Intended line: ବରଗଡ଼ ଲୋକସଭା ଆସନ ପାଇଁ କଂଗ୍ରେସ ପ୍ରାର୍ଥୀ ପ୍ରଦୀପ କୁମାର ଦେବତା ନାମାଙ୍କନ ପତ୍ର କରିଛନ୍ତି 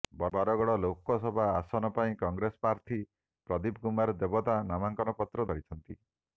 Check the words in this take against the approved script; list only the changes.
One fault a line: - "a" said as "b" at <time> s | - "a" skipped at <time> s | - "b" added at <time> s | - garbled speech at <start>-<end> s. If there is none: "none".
none